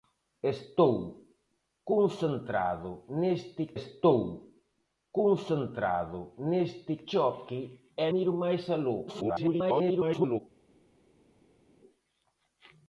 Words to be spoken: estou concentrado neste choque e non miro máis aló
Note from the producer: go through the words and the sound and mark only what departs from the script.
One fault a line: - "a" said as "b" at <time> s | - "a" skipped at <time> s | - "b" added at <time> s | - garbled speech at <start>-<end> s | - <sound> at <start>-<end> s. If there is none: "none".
- "estou concentrado neste" added at 3.8 s
- "non" skipped at 8.1 s
- garbled speech at 9.1-10.4 s